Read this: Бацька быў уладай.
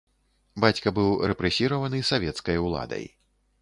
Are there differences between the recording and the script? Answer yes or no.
yes